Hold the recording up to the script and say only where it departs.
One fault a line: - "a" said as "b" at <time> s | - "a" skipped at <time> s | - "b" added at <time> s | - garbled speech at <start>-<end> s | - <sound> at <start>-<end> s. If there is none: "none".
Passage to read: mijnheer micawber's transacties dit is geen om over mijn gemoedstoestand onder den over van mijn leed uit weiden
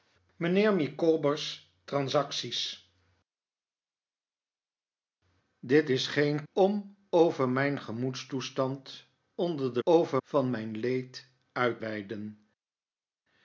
none